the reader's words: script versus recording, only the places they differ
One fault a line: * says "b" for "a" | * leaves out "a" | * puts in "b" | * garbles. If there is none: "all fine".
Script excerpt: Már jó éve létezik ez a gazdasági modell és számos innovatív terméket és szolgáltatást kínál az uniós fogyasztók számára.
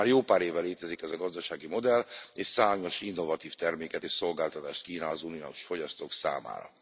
* puts in "pár"